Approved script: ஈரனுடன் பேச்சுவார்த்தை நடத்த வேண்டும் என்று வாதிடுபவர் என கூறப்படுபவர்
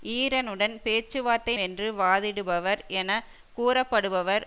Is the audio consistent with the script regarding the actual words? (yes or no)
no